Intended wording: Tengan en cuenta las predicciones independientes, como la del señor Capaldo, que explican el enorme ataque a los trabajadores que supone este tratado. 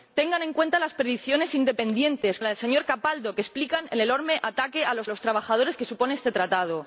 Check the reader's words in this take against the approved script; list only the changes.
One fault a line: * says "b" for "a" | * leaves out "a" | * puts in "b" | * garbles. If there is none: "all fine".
* leaves out "como"
* puts in "los"